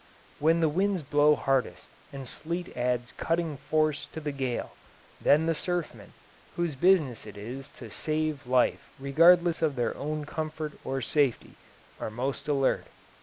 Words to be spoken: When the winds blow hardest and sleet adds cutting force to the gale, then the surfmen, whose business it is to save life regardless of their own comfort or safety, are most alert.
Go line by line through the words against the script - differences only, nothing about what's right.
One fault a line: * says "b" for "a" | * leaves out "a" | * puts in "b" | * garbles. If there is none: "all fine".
all fine